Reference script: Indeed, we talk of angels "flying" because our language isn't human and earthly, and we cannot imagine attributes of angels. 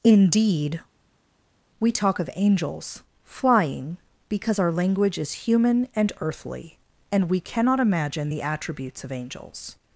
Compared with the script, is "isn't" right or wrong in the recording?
wrong